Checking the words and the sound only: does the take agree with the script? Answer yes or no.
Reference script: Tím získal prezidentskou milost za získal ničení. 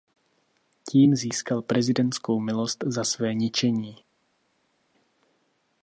no